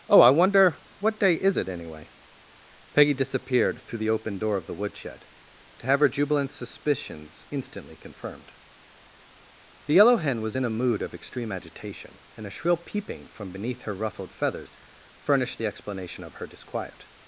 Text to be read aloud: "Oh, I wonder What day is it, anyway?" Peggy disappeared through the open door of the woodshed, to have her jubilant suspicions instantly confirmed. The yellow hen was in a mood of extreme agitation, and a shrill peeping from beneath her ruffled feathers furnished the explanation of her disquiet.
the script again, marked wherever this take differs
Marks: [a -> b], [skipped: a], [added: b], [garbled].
"Oh, I wonder What day is it, anyway?" Peggy disappeared through the open door of the woodshed, to have her jubilant suspicions instantly confirmed. The yellow hen was in a mood of extreme agitation, and a shrill peeping from beneath her ruffled feathers furnished the explanation of her disquiet.